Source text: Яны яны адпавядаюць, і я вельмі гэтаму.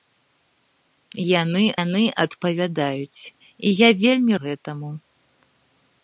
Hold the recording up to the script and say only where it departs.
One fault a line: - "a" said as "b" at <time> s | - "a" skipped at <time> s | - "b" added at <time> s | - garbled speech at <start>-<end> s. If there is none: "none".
none